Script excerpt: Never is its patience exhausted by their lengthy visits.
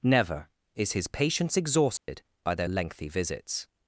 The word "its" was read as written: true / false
false